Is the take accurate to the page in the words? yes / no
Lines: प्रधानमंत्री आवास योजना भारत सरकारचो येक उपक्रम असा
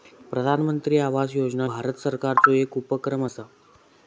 yes